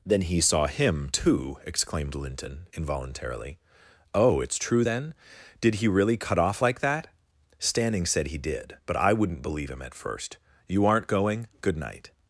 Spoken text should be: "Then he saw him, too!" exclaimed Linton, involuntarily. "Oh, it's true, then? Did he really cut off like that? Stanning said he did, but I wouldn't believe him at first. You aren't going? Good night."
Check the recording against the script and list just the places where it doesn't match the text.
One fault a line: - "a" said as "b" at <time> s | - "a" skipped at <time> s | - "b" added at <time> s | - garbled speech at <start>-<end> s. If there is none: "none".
none